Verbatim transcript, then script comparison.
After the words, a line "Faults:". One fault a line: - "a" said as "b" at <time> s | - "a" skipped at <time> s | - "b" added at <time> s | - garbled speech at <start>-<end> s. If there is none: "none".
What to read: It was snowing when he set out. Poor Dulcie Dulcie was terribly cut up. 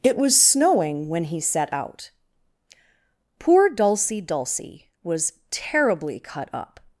It was snowing when he set out. Poor Dulcie Dulcie was terribly cut up.
Faults:
none